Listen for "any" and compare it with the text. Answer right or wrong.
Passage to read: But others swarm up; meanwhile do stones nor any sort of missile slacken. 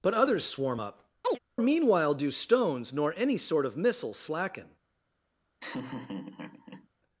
right